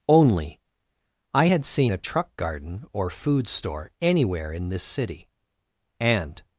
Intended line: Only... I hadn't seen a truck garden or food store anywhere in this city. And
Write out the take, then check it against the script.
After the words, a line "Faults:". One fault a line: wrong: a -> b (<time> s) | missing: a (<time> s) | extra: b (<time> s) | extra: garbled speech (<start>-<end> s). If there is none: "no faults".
Only... I had seen a truck garden or food store anywhere in this city. And
Faults:
wrong: hadn't -> had (1.4 s)